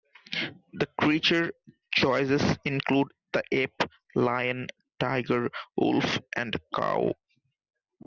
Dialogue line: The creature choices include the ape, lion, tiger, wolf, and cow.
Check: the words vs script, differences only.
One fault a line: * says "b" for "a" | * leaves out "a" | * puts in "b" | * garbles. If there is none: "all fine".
all fine